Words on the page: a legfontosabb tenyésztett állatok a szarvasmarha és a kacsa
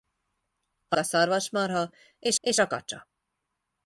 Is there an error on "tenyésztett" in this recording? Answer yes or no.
yes